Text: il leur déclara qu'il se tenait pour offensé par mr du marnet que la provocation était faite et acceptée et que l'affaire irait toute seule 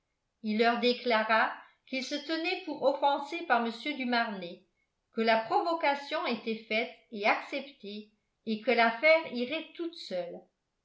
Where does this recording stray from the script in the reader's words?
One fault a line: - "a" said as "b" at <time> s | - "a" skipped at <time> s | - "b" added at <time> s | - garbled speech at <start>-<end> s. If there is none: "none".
none